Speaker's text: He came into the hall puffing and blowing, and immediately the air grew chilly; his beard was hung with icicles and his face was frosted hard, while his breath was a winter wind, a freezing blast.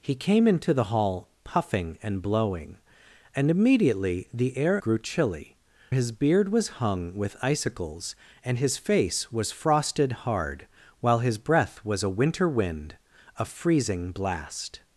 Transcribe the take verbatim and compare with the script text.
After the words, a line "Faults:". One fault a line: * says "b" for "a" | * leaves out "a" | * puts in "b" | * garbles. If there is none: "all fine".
He came into the hall puffing and blowing, and immediately the air grew chilly; his beard was hung with icicles and his face was frosted hard, while his breath was a winter wind, a freezing blast.
Faults:
all fine